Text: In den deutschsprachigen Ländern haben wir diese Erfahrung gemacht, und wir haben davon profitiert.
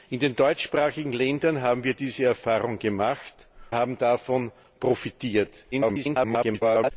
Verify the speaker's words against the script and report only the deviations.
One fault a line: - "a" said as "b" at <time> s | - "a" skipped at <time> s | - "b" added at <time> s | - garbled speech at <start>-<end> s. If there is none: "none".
- "und wir" skipped at 3.5 s
- garbled speech at 5.7-6.9 s